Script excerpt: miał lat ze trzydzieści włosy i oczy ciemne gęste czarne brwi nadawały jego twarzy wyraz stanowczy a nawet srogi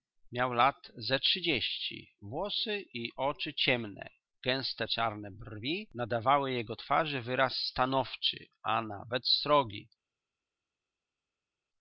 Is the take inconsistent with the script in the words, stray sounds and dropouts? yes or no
no